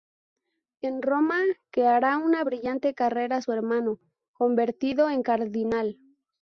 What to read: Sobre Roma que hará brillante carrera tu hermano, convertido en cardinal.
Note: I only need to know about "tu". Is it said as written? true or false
false